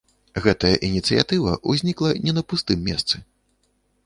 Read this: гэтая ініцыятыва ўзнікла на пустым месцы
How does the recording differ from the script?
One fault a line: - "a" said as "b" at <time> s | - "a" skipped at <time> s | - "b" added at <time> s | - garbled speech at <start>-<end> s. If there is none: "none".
- "не" added at 2.2 s